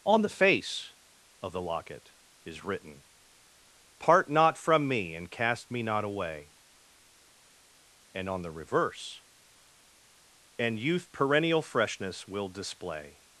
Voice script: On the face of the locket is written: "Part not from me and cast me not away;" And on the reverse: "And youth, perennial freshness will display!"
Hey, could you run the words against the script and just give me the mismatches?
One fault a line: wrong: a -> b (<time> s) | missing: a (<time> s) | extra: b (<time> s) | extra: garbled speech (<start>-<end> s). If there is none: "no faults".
no faults